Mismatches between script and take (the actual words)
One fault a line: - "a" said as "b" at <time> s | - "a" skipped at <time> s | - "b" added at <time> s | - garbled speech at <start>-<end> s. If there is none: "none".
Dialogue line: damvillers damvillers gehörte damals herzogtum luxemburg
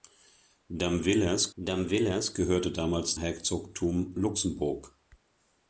none